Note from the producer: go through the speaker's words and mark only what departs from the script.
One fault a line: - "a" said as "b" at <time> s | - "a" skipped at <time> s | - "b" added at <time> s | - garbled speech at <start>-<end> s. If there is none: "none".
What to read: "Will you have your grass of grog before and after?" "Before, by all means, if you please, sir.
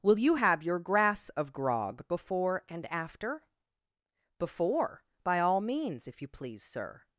none